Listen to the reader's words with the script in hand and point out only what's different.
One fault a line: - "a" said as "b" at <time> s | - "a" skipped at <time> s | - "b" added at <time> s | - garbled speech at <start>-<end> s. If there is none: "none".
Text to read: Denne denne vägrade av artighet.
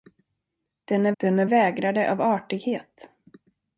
none